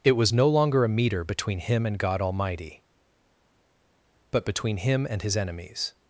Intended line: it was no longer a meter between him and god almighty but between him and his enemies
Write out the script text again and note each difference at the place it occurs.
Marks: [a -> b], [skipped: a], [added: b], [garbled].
it was no longer a meter between him and god almighty but between him and his enemies